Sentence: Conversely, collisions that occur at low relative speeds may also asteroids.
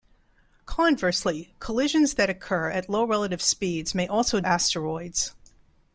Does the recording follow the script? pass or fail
pass